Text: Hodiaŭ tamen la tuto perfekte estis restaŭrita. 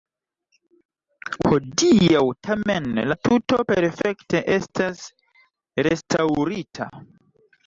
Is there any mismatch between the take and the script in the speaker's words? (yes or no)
yes